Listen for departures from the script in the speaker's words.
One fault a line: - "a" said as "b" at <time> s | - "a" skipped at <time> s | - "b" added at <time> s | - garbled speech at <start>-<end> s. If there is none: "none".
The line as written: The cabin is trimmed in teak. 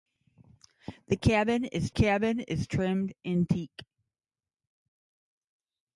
- "cabin is" added at 1.9 s